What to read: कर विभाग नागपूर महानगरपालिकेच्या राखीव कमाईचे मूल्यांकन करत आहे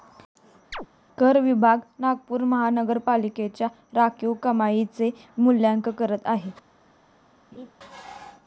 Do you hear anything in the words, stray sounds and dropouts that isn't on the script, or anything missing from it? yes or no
yes